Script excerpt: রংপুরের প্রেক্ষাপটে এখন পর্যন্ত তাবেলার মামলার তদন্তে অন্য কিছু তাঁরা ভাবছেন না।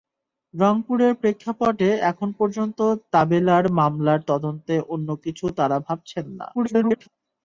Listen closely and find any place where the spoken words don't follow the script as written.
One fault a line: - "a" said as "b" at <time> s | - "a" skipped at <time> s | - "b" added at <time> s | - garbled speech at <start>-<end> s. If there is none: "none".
- garbled speech at 6.5-7.1 s